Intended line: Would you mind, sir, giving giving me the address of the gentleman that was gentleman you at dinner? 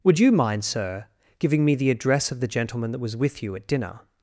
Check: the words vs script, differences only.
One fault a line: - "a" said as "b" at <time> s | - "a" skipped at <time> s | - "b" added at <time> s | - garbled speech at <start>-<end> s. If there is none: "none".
- "giving" skipped at 1.6 s
- "gentleman" said as "with" at 3.2 s